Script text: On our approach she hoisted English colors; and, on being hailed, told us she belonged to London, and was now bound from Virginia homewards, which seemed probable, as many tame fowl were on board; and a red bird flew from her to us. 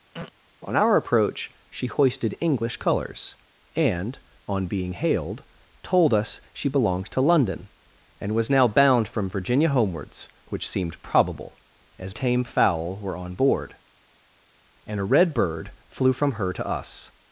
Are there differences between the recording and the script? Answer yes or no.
yes